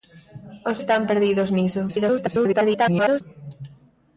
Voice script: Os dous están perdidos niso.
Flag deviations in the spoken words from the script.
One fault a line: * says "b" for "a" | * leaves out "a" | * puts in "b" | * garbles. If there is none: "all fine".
* leaves out "dous"
* garbles